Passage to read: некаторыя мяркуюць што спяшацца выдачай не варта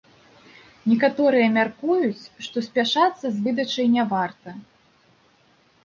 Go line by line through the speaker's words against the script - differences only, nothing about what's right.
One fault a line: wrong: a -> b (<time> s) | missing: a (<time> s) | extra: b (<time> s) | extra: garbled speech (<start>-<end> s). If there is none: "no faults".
extra: з (3.4 s)